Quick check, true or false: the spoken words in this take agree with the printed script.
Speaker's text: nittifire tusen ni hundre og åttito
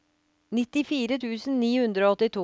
true